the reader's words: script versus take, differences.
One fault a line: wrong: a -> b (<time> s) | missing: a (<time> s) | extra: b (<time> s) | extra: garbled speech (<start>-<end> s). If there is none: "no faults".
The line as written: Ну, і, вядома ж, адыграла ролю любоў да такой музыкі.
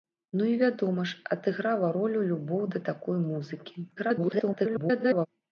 extra: garbled speech (4.0-5.3 s)